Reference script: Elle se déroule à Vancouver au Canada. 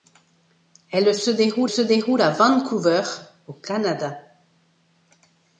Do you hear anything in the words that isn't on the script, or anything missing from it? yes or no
yes